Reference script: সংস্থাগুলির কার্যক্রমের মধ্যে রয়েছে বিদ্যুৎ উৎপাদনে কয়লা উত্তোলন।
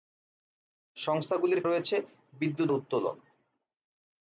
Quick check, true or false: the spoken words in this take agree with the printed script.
false